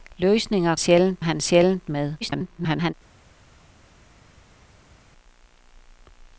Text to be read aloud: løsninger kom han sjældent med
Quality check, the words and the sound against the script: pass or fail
fail